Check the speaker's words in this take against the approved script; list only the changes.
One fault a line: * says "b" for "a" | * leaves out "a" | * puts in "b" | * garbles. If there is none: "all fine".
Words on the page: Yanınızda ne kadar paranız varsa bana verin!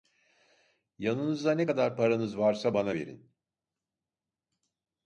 all fine